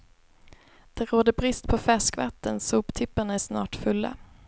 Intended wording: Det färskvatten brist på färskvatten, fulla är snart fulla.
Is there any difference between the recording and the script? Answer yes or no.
yes